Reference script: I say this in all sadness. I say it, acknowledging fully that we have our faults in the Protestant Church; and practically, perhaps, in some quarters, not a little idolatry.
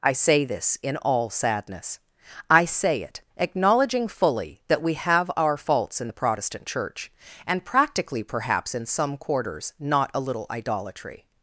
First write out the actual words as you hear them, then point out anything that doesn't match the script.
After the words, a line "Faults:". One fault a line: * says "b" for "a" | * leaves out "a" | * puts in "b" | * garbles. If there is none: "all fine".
I say this in all sadness. I say it, acknowledging fully that we have our faults in the Protestant Church; and practically, perhaps, in some quarters, not a little idolatry.
Faults:
all fine